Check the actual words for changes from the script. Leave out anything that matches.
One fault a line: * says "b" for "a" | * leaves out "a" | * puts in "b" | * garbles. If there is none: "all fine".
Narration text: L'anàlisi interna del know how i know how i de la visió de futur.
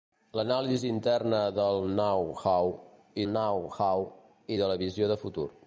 all fine